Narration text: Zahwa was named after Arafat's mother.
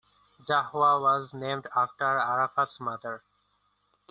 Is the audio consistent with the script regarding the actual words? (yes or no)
yes